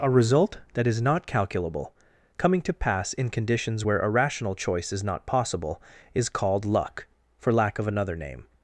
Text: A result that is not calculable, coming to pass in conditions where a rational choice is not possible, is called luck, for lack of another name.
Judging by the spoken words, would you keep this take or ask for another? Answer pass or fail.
pass